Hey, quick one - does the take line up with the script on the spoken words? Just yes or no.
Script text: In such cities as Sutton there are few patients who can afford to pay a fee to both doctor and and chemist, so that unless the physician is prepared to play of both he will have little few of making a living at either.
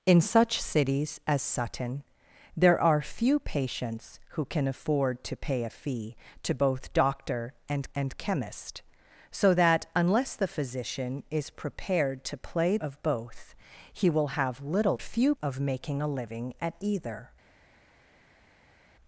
yes